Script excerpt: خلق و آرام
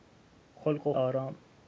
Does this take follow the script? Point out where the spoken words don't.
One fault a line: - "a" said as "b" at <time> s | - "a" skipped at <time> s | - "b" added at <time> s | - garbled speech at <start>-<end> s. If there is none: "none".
none